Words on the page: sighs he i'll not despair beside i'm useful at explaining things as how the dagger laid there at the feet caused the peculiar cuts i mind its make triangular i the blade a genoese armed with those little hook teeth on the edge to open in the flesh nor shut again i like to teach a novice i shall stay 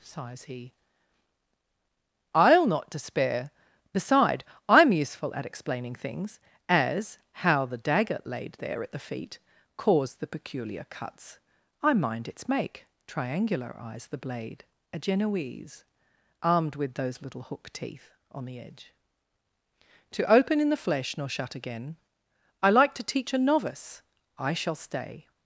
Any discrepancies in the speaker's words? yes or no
yes